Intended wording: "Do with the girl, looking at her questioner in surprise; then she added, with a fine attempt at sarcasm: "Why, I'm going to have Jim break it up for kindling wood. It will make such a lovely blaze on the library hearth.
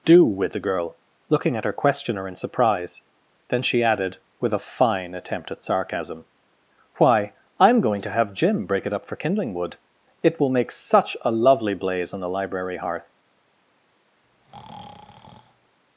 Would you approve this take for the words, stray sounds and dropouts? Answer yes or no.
no